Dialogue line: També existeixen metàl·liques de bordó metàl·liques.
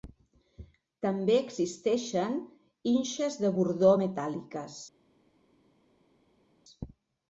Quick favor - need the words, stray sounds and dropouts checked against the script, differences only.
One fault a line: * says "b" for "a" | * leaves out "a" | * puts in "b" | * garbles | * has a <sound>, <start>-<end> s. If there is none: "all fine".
* says "inxes" for "metàl·liques"